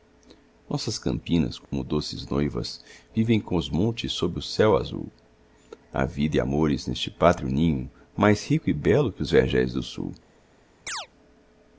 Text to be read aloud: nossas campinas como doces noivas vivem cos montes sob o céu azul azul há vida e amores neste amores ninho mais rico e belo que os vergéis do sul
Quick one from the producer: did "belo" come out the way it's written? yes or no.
yes